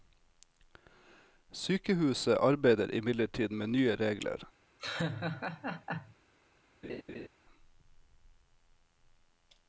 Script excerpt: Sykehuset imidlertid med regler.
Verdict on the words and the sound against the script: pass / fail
fail